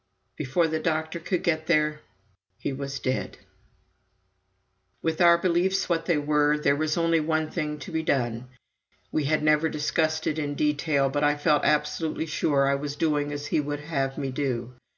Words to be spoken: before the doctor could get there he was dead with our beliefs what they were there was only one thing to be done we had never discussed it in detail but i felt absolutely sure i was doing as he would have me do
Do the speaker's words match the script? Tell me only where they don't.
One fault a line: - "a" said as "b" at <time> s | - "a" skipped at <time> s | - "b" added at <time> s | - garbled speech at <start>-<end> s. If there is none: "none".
none